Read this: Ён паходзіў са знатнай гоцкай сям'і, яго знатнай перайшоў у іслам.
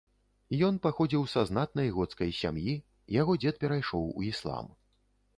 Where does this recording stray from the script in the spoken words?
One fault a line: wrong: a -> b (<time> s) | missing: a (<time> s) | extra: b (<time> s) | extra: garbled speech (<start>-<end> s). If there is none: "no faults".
wrong: знатнай -> дзед (3.4 s)